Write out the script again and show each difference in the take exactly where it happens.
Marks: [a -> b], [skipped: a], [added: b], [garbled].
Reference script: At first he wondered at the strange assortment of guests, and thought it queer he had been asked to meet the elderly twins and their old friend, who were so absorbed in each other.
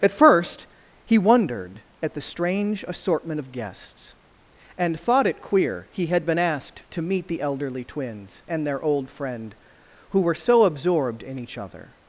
At first he wondered at the strange assortment of guests, and thought it queer he had been asked to meet the elderly twins and their old friend, who were so absorbed in each other.